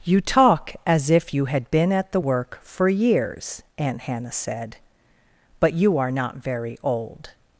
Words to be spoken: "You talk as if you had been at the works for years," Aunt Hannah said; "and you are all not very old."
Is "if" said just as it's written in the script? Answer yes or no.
yes